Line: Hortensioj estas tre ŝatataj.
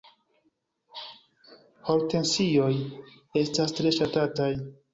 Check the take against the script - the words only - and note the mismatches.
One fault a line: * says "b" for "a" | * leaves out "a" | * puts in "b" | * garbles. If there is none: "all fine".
all fine